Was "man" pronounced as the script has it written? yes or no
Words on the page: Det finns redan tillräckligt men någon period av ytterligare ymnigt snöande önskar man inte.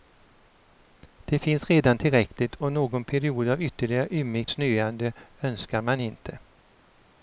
yes